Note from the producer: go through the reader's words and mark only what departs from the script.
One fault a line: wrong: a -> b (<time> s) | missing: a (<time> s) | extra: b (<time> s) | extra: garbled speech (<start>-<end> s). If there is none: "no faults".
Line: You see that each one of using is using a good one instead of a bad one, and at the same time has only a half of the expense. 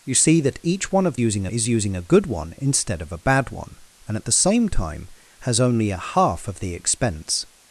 no faults